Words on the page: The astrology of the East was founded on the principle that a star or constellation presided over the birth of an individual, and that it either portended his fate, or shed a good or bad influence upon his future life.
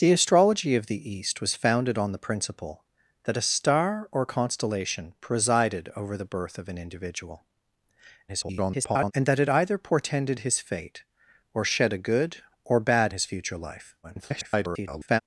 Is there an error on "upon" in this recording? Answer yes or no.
yes